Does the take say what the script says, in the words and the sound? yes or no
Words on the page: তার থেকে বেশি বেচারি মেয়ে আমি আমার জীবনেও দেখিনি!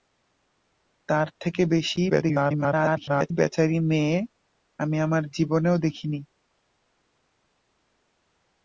no